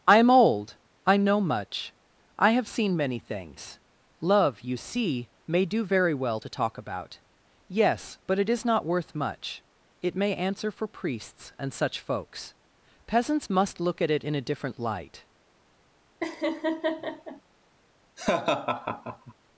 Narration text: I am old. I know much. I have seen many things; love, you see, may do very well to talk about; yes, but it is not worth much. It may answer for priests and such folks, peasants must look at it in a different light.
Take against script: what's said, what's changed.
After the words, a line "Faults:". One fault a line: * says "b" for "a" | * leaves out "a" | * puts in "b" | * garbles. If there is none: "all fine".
I am old. I know much. I have seen many things; love, you see, may do very well to talk about; yes, but it is not worth much. It may answer for priests and such folks, peasants must look at it in a different light.
Faults:
all fine